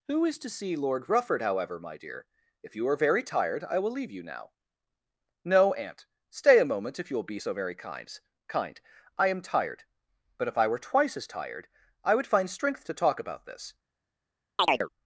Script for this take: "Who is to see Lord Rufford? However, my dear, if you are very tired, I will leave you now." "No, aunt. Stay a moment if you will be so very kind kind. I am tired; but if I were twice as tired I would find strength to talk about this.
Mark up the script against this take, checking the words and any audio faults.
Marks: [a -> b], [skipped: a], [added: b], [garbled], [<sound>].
"Who is to see Lord Rufford? However, my dear, if you are very tired, I will leave you now." "No, aunt. Stay a moment if you will be so very kind kind. I am tired; but if I were twice as tired I would find strength to talk about this. [chirp]